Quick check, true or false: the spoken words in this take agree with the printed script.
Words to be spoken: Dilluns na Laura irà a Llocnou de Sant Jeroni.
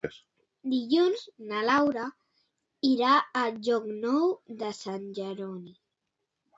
true